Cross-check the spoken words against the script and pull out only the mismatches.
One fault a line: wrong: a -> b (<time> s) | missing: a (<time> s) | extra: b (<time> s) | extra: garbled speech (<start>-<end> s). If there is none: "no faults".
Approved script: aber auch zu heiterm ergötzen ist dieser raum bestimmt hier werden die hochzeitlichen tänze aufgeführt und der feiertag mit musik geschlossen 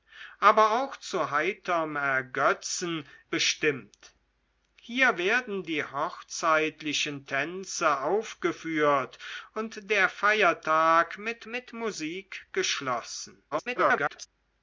missing: ist dieser raum (3.1 s)
extra: mit (11.5 s)
extra: garbled speech (13.5-14.3 s)